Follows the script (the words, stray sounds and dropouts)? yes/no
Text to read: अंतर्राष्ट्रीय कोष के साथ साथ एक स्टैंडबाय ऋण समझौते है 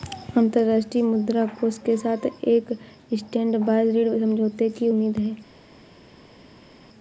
no